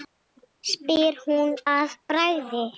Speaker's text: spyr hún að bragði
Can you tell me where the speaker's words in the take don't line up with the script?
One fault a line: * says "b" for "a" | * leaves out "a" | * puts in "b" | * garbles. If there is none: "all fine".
all fine